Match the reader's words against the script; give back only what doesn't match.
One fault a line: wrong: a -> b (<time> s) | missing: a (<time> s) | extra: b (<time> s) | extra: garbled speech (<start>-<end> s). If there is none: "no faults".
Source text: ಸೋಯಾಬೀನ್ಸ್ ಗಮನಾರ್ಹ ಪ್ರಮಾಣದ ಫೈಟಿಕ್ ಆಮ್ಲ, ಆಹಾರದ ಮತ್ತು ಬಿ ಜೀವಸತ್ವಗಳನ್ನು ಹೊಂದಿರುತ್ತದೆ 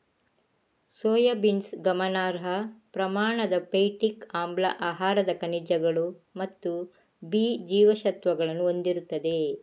extra: ಖನಿಜಗಳು (5.4 s)